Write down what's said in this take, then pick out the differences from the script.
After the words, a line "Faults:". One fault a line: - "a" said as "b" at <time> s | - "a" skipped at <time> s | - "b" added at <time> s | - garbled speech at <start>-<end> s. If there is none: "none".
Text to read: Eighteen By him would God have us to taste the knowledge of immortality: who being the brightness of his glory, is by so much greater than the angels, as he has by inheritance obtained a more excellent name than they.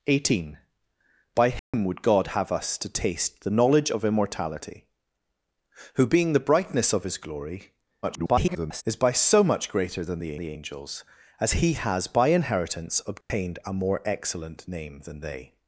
Eighteen By him would God have us to taste the knowledge of immortality: who being the brightness of his glory, [garbled] is by so much greater than the the angels, as he has by inheritance obtained a more excellent name than they.
Faults:
- garbled speech at 8.0-8.8 s
- "the" added at 10.4 s